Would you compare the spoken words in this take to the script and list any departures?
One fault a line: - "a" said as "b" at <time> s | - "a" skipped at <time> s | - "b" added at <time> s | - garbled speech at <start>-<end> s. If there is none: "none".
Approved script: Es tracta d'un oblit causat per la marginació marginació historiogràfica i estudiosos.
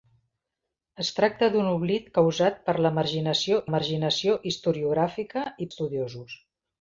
none